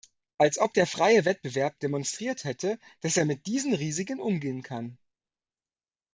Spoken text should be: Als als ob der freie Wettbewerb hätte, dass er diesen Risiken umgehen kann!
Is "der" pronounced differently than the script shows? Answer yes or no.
no